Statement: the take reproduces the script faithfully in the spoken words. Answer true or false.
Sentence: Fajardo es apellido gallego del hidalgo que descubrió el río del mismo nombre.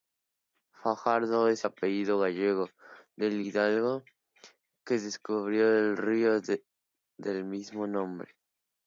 true